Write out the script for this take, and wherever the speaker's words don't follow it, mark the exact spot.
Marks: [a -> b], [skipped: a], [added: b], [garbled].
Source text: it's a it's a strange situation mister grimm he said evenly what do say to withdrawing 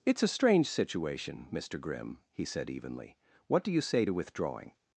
it's a [skipped: it's a] strange situation mister grimm he said evenly what do [added: you] say to withdrawing